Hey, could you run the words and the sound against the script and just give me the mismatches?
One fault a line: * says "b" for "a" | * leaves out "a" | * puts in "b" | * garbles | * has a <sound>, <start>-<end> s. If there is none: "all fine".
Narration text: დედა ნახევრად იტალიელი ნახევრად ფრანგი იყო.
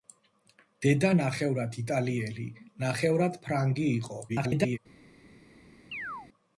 * garbles
* has a chirp, 5.9-6.3 s